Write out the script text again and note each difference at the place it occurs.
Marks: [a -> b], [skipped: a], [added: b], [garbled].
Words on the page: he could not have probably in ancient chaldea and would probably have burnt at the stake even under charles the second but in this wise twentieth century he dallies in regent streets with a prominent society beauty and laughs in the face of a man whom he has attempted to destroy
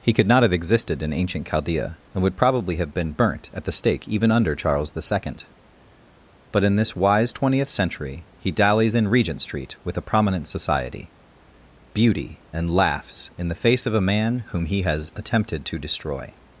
he could not have [probably -> existed] in ancient chaldea and would probably have [added: been] burnt at the stake even under charles the second but in this wise twentieth century he dallies in regent [streets -> street] with a prominent society beauty and laughs in the face of a man whom he has attempted to destroy